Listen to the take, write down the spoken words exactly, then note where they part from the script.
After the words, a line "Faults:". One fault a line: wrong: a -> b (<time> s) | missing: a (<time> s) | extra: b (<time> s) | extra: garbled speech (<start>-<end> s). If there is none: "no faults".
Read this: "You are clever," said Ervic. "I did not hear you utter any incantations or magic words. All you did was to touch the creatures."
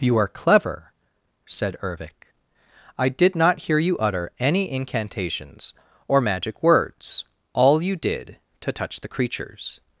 "You are clever," said Ervic. "I did not hear you utter any incantations or magic words. All you did to touch the creatures."
Faults:
missing: was (8.4 s)